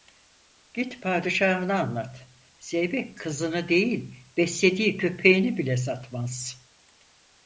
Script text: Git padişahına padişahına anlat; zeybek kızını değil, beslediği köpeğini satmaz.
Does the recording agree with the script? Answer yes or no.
no